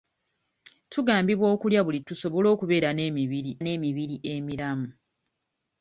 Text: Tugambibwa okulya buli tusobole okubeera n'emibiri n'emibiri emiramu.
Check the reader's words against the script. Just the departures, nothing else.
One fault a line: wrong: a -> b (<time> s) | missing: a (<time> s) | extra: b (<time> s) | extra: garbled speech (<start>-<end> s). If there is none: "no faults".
no faults